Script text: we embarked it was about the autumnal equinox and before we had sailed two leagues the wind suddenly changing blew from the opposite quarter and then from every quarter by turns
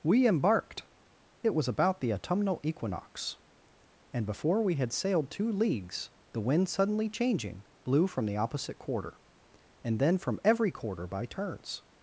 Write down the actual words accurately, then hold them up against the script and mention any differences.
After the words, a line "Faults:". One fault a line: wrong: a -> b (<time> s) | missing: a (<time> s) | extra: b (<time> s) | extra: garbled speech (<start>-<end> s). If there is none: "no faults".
we embarked it was about the autumnal equinox and before we had sailed two leagues the wind suddenly changing blew from the opposite quarter and then from every quarter by turns
Faults:
no faults